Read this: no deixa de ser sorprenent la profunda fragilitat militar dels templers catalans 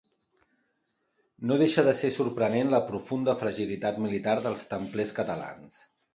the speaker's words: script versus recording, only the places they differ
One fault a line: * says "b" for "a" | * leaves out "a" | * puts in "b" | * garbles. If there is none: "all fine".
all fine